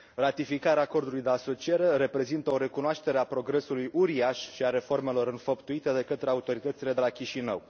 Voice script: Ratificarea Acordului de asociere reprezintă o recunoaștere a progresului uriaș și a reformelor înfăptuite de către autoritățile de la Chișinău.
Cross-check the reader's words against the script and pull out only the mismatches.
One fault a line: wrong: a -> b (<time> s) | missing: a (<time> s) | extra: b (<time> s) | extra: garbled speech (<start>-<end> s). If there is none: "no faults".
no faults